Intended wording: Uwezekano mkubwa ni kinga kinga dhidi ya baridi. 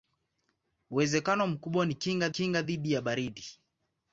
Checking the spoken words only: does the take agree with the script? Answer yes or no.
yes